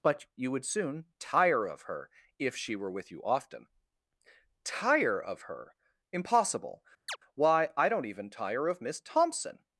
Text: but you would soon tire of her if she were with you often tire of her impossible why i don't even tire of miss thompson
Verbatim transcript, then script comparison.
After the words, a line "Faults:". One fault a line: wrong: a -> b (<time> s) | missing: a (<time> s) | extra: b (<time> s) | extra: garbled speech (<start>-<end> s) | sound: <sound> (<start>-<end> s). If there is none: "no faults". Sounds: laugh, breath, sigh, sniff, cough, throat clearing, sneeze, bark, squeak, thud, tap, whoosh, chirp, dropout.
but you would soon tire of her if she were with you often tire of her impossible why i don't even tire of miss thompson
Faults:
sound: chirp (7.1-7.2 s)